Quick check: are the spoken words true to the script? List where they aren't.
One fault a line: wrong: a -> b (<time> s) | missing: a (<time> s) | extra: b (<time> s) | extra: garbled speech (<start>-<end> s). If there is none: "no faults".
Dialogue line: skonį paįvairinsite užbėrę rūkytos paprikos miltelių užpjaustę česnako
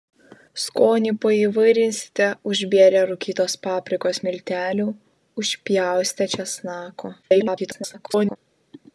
extra: garbled speech (7.2-8.4 s)